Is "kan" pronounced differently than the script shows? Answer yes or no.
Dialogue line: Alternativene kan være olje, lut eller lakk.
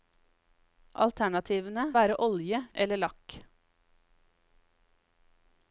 yes